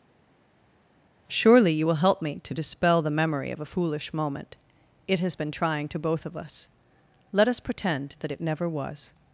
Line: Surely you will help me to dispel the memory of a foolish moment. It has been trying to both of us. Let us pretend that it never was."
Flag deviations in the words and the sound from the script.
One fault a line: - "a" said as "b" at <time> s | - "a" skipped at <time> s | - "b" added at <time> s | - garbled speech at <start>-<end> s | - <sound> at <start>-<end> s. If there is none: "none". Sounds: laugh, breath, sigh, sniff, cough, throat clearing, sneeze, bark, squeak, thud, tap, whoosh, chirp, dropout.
none